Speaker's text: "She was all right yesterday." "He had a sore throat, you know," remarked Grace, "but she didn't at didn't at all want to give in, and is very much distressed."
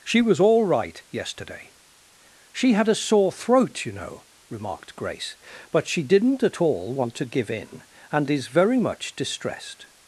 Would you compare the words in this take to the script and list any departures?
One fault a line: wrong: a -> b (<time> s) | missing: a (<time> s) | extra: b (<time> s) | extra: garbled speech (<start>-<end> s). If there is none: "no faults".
wrong: He -> She (2.5 s)
missing: didn't at (6.6 s)